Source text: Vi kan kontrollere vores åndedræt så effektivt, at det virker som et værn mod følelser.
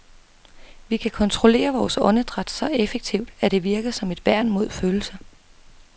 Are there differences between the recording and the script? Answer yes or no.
no